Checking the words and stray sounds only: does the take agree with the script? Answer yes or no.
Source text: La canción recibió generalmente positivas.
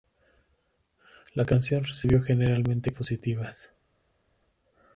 yes